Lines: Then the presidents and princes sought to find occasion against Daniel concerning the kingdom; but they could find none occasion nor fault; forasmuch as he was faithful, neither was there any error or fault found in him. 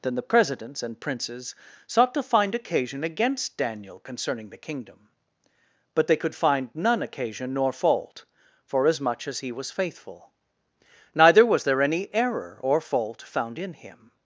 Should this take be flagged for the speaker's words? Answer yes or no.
no